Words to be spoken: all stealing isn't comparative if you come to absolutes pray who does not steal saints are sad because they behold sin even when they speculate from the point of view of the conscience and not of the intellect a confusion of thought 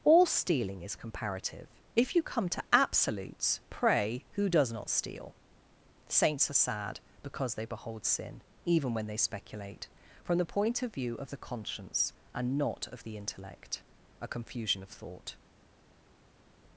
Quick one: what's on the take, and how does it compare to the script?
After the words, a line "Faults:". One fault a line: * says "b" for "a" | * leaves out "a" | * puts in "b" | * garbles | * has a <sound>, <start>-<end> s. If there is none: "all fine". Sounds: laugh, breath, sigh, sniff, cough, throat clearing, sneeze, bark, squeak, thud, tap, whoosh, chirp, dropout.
all stealing is comparative if you come to absolutes pray who does not steal saints are sad because they behold sin even when they speculate from the point of view of the conscience and not of the intellect a confusion of thought
Faults:
* says "is" for "isn't"